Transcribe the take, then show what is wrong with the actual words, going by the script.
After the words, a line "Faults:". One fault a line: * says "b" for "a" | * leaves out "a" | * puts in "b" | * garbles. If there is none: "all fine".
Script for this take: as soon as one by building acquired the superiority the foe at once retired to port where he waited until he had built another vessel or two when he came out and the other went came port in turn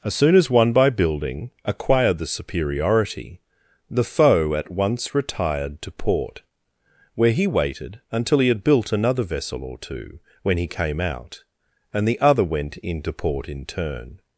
as soon as one by building acquired the superiority the foe at once retired to port where he waited until he had built another vessel or two when he came out and the other went into port in turn
Faults:
* says "into" for "came"